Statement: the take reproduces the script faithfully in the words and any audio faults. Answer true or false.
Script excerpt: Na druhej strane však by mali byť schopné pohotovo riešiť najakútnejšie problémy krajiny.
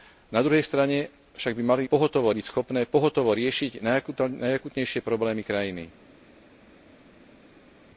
false